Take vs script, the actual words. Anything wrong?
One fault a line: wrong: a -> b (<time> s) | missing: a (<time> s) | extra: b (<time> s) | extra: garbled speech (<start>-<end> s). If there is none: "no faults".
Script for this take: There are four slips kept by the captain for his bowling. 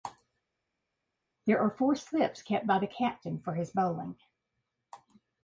no faults